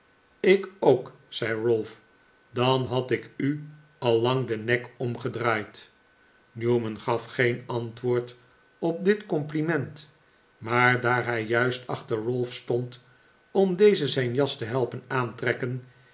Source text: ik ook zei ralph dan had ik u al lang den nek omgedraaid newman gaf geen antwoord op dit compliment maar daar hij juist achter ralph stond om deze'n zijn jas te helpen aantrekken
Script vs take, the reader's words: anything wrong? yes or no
no